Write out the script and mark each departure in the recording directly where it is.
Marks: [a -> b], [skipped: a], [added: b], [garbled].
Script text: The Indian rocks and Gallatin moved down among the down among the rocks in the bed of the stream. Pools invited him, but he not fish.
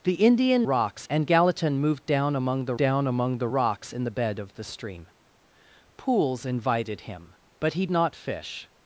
The Indian rocks and Gallatin moved down among the down among the rocks in the bed of the stream. Pools invited him, but he not fish.